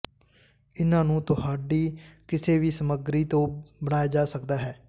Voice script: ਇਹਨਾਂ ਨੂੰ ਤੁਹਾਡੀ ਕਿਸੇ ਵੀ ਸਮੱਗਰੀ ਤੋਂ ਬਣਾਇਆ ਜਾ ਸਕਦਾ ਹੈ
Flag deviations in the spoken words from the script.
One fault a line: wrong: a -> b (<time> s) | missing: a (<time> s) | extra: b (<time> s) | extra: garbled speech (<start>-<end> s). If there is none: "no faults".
no faults